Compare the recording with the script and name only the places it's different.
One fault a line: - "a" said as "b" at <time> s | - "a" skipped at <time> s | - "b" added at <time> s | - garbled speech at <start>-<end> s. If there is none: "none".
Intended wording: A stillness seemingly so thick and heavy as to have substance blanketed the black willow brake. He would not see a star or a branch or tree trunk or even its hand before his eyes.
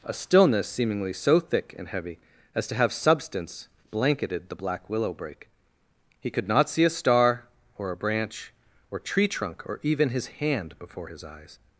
- "would" said as "could" at 6.3 s
- "its" said as "his" at 10.1 s